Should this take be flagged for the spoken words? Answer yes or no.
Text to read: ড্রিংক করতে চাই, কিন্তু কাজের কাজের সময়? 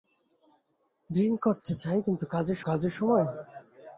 no